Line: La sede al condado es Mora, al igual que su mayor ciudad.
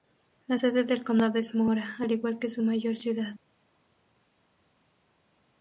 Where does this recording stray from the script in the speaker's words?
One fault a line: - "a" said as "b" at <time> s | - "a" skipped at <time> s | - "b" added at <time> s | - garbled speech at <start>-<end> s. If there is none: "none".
- "al" said as "del" at 0.8 s